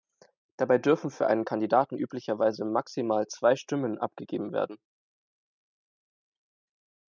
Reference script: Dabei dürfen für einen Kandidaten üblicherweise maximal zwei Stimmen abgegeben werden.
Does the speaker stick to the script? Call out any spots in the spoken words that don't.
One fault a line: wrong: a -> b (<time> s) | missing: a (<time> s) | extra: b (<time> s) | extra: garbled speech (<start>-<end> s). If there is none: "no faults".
no faults